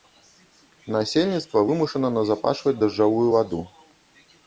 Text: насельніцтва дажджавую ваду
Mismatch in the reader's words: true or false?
true